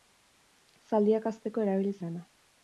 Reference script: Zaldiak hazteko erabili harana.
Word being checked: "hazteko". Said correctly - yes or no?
yes